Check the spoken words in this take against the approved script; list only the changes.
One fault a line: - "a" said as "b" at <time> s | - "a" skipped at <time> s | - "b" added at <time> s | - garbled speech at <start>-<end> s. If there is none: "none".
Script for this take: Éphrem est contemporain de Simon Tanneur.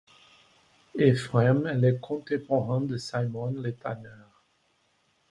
- "le" added at 1.8 s
- "le" added at 3.5 s